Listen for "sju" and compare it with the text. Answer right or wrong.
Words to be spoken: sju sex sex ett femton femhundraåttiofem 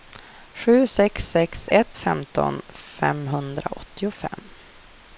right